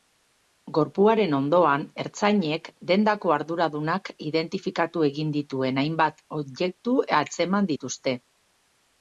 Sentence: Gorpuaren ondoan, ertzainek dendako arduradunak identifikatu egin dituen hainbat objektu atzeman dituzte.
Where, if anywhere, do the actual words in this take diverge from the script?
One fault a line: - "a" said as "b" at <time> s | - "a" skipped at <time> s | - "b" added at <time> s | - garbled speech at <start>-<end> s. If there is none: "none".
none